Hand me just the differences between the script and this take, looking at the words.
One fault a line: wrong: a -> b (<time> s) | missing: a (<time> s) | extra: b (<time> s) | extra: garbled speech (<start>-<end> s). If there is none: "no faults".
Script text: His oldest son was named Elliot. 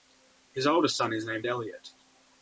wrong: was -> is (1.1 s)